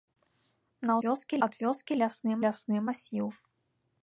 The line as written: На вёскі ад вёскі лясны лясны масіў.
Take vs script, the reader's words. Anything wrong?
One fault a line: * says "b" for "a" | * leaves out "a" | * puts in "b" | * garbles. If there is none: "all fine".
all fine